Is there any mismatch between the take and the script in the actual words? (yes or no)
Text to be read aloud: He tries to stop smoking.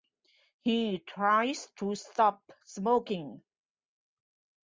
no